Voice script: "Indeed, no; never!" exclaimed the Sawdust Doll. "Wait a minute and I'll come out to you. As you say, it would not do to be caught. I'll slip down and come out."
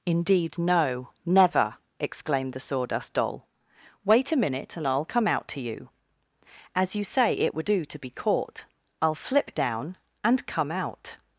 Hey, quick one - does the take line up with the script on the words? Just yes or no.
no